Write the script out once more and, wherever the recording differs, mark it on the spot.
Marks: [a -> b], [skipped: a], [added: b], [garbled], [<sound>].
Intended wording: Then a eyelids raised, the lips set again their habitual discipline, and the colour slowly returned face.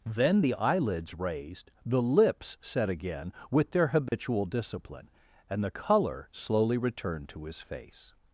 Then [a -> the] eyelids raised, the lips set again [added: with] their habitual [dropout] discipline, and the colour slowly returned [added: to his] face.